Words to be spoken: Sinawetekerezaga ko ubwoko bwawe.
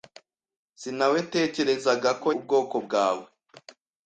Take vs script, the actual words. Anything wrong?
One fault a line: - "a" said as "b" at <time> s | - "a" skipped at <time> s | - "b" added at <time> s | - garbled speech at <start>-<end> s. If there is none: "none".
none